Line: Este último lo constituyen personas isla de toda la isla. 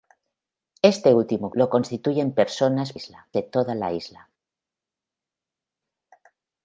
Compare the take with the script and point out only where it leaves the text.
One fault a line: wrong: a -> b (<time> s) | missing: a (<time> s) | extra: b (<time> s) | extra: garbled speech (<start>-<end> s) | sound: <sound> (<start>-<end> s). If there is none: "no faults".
no faults